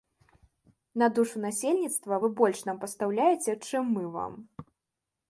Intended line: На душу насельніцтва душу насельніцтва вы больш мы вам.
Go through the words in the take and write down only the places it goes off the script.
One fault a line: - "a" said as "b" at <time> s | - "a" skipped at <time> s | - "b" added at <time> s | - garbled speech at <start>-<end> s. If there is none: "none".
- "душу насельніцтва вы больш" said as "вы больш нам пастаўляеце чым" at 2.2 s